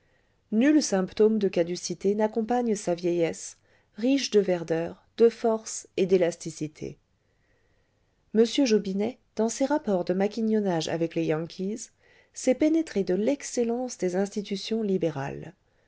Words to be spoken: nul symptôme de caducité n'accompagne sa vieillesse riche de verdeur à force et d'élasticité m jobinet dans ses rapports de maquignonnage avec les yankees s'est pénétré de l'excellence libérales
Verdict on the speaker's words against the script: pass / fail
fail